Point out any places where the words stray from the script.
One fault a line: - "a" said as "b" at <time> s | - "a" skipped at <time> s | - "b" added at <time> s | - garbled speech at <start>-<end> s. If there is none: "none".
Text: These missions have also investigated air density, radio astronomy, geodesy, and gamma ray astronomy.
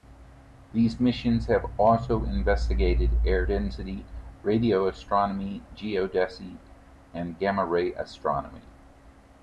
none